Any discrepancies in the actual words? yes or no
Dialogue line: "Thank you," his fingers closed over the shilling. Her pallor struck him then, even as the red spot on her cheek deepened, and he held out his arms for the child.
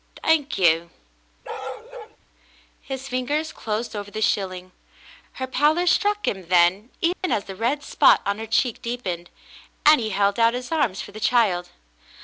no